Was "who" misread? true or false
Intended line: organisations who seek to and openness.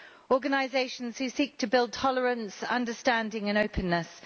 false